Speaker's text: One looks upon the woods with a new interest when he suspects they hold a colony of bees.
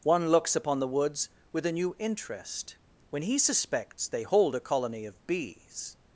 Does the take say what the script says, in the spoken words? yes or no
yes